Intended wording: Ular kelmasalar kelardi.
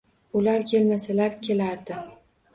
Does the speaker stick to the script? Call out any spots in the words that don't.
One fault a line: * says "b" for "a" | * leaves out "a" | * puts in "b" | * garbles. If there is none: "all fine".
all fine